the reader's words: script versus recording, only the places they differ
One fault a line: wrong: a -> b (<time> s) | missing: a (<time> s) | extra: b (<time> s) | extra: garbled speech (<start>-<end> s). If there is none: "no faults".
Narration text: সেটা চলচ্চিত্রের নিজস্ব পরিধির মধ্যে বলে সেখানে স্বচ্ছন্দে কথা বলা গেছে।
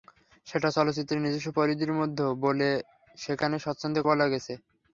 missing: কথা (4.0 s)